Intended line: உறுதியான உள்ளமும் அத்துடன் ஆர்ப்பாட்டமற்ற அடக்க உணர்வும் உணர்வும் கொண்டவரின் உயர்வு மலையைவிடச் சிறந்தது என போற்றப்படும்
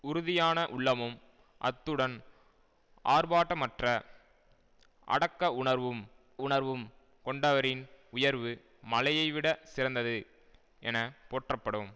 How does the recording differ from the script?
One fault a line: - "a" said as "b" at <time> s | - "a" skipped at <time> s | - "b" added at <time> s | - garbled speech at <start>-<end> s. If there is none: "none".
none